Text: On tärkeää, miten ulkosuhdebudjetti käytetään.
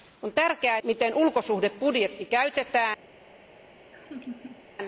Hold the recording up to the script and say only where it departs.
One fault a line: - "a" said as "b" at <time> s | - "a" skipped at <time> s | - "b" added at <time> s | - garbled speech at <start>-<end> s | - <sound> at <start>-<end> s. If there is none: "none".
- laugh at 3.9-4.7 s